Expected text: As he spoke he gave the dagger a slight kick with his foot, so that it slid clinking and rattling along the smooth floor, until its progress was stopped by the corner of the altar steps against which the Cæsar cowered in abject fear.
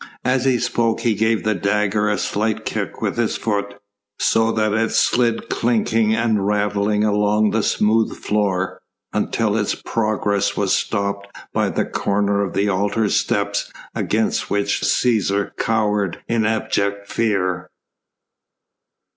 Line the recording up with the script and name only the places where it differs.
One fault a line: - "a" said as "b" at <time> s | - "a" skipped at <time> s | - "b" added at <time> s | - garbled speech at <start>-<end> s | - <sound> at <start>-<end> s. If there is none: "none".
- "the" skipped at 14.8 s